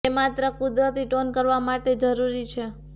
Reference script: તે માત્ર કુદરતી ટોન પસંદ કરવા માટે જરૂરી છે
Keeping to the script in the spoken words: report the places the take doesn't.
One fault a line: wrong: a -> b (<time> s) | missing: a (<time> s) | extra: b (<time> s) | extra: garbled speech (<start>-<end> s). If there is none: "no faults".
missing: પસંદ (1.3 s)